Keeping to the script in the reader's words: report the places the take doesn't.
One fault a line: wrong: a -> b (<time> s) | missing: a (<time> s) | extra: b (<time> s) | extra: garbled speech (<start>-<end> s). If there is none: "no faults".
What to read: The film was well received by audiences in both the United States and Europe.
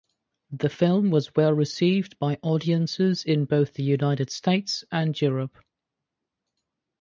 no faults